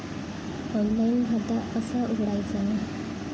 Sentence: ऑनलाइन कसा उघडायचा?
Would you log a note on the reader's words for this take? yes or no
yes